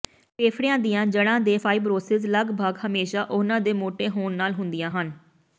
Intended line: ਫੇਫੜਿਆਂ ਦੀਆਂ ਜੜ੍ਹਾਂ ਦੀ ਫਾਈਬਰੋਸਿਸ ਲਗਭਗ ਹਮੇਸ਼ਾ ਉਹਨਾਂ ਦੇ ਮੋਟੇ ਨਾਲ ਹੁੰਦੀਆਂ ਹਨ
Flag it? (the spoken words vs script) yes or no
yes